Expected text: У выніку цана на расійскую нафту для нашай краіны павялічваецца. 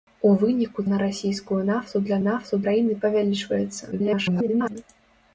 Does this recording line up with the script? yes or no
no